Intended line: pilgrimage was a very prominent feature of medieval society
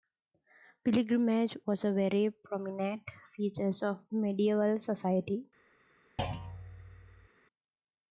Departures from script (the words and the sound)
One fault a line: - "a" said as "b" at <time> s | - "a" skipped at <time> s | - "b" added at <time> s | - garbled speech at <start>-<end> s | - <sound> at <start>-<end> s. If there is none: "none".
- thud at 6.2-7.3 s